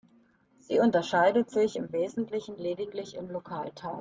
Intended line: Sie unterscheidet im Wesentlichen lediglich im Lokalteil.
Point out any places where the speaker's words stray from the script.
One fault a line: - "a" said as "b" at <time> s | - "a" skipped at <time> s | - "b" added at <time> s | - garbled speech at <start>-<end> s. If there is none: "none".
- "sich" added at 1.5 s